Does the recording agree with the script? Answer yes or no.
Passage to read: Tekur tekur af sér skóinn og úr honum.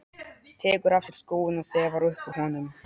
no